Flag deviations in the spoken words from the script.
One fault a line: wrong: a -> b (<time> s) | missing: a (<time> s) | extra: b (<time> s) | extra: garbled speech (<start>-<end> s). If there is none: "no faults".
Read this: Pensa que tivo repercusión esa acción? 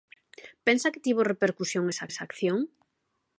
extra: esa (2.1 s)